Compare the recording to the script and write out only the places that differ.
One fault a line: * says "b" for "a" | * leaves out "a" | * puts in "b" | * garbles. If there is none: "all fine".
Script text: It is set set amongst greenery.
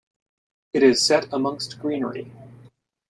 * leaves out "set"